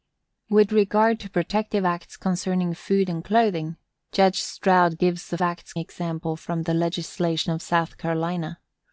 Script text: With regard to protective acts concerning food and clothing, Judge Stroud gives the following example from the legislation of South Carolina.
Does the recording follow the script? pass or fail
fail